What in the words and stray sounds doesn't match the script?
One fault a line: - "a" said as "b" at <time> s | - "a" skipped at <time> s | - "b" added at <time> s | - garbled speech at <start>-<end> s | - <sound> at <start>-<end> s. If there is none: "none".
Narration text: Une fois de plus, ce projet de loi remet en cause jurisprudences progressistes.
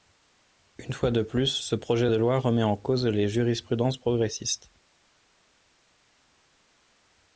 - "les" added at 3.0 s